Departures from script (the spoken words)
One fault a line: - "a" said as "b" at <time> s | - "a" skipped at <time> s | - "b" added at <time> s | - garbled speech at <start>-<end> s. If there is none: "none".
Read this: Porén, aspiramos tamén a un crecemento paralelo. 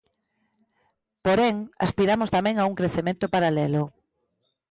none